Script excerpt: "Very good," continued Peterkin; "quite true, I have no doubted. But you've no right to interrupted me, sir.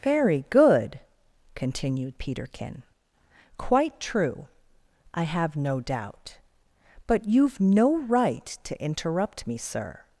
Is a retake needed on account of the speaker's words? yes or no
yes